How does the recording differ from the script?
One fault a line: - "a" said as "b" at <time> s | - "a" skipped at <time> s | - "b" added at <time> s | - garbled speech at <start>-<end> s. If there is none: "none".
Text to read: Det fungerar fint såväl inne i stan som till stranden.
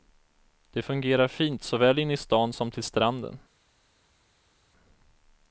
none